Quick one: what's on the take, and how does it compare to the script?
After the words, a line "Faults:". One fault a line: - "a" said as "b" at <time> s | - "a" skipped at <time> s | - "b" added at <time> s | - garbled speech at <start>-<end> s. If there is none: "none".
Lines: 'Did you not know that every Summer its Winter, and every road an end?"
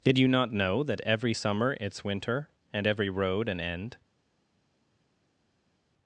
'Did you not know that every Summer its Winter, and every road an end?"
Faults:
none